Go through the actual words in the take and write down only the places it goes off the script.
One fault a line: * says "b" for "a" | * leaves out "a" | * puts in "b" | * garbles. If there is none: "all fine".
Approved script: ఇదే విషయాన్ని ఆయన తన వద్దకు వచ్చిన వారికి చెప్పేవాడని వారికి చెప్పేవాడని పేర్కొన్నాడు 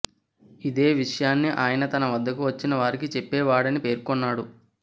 * leaves out "వారికి చెప్పేవాడని"